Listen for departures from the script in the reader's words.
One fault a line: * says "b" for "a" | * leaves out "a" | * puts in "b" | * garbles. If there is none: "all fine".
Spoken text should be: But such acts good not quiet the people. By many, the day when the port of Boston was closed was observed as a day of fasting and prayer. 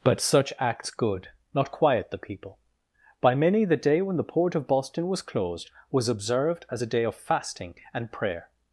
all fine